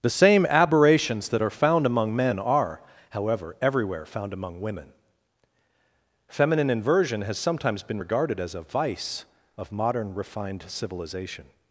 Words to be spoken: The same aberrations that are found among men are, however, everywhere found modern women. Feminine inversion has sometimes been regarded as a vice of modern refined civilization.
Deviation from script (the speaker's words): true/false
true